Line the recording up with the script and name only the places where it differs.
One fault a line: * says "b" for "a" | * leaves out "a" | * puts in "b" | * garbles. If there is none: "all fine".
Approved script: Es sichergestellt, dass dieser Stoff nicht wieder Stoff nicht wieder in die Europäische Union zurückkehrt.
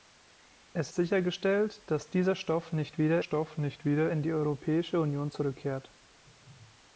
all fine